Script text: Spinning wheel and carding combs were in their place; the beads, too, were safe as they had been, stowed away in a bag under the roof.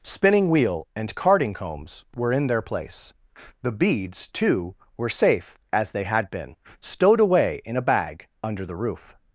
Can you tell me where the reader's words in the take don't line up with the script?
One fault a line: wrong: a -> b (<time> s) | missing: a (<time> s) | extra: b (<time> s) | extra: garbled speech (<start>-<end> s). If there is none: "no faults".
no faults